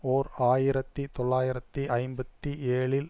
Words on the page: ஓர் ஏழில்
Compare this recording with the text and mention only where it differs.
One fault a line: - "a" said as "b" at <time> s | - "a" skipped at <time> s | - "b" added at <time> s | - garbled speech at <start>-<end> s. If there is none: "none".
- "ஆயிரத்தி தொள்ளாயிரத்தி ஐம்பத்தி" added at 0.4 s